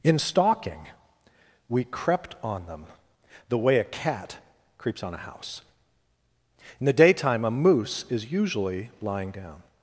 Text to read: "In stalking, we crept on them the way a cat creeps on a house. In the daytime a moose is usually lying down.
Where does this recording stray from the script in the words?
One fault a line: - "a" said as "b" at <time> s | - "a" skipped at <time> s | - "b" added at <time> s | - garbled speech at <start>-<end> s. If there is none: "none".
none